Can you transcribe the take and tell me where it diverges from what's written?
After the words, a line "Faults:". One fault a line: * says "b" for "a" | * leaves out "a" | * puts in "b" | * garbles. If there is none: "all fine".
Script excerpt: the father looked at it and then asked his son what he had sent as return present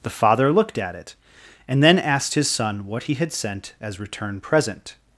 the father looked at it and then asked his son what he had sent as return present
Faults:
all fine